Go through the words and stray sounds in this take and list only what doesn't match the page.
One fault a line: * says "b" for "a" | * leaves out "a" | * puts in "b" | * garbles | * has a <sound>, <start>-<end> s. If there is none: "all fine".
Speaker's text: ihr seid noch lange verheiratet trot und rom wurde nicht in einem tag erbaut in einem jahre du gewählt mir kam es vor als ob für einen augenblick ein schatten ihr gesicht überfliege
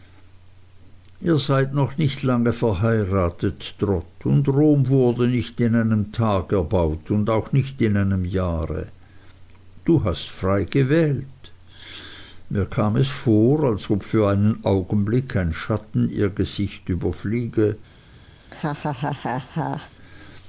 * puts in "nicht"
* puts in "und auch nicht"
* puts in "hast frei"
* has a laugh, 18.4-19.9 s